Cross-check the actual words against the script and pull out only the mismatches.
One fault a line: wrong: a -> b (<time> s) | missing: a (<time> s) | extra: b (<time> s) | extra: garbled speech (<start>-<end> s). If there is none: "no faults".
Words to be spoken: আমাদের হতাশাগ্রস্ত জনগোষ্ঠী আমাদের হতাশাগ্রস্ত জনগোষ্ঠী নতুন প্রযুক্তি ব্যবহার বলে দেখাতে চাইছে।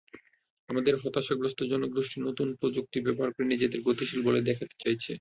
wrong: আমাদের হতাশাগ্রস্ত জনগোষ্ঠী নতুন প্রযুক্তি ব্যবহার -> নতুন প্রযুক্তি ব্যবহার করে নিজেদের গতিশীল (2.2 s)